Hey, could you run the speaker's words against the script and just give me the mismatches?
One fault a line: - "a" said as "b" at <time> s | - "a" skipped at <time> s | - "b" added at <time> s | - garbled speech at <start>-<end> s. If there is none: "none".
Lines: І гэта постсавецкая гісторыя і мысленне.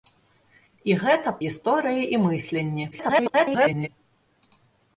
- "постсавецкая" skipped at 1.3 s
- garbled speech at 2.9-3.9 s